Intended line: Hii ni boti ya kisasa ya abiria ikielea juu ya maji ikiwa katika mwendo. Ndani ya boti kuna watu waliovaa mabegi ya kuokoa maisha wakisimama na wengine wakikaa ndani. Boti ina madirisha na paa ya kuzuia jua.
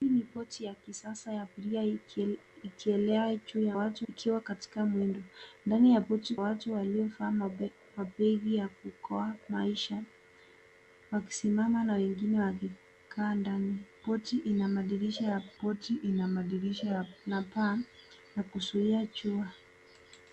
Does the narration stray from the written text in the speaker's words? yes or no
yes